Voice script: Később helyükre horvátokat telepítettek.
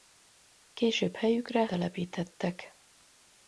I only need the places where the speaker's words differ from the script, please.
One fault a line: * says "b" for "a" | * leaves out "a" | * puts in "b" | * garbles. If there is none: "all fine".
* leaves out "horvátokat"